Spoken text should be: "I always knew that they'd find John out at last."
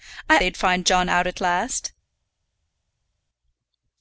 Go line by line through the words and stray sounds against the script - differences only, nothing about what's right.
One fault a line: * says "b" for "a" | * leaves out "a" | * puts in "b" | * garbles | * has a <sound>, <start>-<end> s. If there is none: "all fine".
* leaves out "always knew that"